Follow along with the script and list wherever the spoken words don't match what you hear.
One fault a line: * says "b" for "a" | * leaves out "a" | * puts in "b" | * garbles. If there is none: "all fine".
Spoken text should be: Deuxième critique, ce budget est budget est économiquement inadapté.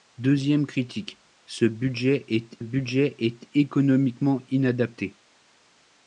all fine